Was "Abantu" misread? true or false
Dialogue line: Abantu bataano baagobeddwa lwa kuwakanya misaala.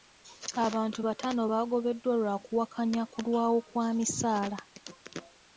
false